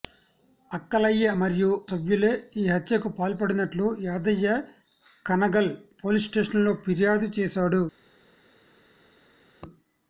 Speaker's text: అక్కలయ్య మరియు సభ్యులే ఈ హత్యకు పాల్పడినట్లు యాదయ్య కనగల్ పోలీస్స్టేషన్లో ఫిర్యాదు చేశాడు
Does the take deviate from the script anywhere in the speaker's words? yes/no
no